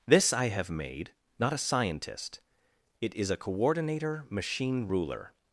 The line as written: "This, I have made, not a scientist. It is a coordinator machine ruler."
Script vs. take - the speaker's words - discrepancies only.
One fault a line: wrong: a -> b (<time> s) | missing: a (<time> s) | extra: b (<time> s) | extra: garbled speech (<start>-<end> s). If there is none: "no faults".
no faults